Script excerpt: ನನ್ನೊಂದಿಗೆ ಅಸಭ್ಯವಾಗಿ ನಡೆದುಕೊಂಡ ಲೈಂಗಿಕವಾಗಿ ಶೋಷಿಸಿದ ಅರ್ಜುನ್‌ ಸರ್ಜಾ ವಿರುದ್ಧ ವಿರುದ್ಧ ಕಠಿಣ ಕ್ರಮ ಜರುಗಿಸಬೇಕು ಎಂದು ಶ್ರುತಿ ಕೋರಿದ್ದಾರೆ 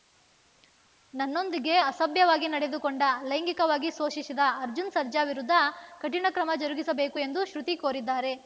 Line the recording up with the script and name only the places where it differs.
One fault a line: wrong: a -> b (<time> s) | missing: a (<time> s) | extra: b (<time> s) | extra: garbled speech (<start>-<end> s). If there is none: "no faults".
missing: ವಿರುದ್ಧ (5.5 s)